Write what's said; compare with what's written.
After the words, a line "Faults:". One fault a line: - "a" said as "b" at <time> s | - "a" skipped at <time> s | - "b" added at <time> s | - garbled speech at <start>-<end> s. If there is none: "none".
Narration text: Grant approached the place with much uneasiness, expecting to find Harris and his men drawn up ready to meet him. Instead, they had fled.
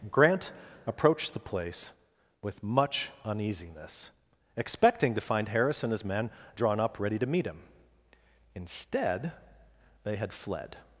Grant approached the place with much uneasiness, expecting to find Harris and his men drawn up ready to meet him. Instead, they had fled.
Faults:
none